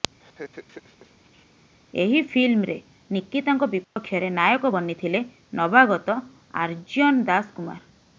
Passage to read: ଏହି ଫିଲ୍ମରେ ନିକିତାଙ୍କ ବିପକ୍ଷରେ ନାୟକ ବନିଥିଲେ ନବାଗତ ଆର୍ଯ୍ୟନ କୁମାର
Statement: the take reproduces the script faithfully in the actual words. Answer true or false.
false